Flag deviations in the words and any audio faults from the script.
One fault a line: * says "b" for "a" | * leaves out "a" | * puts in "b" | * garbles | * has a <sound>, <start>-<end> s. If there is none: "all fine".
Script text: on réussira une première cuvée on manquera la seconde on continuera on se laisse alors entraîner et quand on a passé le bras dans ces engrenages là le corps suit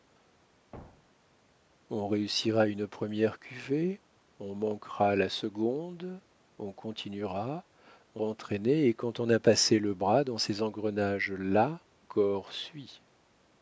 * has a thud, 0.7-1.4 s
* leaves out "se laisse alors"
* leaves out "le"